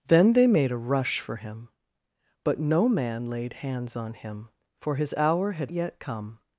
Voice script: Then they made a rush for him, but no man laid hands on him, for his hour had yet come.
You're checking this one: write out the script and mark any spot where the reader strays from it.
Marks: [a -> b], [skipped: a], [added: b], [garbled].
Then they made a rush for him, but no man laid hands on him, for his hour had yet come.